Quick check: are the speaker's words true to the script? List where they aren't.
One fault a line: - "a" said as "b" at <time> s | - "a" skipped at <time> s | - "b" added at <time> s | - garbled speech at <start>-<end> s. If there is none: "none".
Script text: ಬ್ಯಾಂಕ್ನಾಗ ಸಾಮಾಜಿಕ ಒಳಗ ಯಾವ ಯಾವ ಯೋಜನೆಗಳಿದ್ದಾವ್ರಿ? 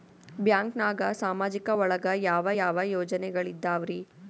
none